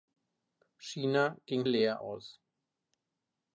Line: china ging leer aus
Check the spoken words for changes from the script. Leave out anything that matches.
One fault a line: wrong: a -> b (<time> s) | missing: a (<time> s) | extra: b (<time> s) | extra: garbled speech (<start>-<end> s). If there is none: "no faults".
no faults